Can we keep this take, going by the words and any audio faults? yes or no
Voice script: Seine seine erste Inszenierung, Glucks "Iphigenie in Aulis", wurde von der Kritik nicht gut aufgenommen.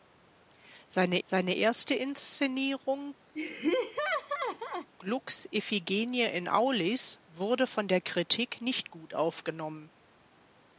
no